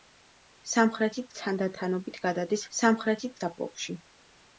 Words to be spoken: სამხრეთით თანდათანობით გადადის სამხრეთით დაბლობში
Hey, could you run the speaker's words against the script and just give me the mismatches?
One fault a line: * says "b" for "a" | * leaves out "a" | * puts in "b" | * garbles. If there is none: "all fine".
all fine